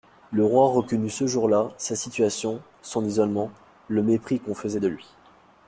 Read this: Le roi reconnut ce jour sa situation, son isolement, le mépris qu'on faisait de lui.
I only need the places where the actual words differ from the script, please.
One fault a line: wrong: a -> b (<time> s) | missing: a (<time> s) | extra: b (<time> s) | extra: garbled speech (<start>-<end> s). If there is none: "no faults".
extra: là (1.5 s)